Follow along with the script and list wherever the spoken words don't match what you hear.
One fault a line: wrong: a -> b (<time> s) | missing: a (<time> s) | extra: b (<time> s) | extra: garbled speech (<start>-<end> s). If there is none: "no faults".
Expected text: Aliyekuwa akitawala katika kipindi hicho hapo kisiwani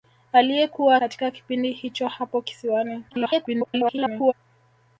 missing: akitawala (0.9 s)
extra: garbled speech (3.1-4.3 s)